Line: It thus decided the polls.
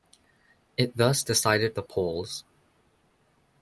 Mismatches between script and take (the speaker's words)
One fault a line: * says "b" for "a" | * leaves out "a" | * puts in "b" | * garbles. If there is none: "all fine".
all fine